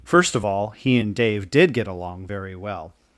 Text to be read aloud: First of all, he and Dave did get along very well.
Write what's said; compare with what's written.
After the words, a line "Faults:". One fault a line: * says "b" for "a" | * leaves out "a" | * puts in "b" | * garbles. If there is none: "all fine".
First of all, he and Dave did get along very well.
Faults:
all fine